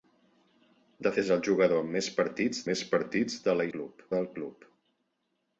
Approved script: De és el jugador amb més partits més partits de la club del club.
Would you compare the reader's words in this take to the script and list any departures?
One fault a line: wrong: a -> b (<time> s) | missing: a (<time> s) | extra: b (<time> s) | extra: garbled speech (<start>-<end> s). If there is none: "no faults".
no faults